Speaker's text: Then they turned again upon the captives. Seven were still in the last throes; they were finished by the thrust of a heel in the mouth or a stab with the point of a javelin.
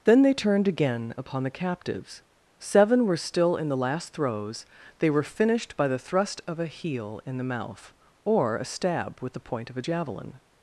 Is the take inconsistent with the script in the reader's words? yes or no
no